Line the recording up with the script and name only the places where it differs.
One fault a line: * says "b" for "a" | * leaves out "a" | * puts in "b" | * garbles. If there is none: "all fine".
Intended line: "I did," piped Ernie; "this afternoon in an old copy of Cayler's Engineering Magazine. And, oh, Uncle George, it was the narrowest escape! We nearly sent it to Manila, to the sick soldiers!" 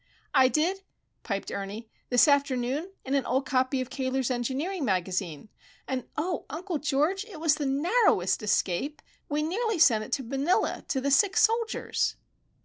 all fine